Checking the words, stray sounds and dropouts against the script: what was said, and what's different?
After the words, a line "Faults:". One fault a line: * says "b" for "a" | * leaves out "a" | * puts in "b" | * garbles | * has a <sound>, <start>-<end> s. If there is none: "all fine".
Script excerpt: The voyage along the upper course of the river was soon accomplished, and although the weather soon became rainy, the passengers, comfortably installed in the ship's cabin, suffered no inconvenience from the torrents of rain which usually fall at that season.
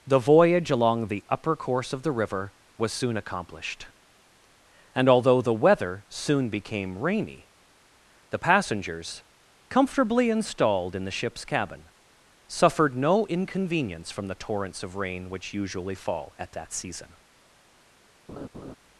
The voyage along the upper course of the river was soon accomplished, and although the weather soon became rainy, the passengers, comfortably installed in the ship's cabin, suffered no inconvenience from the torrents of rain which usually fall at that season.
Faults:
* has a laugh, 18.3-18.8 s